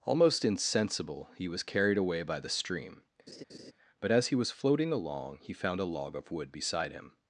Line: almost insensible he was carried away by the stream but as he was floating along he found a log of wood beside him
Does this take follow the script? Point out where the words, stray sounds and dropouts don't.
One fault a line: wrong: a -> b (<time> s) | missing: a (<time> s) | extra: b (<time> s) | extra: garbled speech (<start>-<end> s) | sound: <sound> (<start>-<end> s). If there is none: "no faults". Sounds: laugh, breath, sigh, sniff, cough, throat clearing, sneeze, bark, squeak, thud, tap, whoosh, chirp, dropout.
sound: laugh (3.3-3.7 s)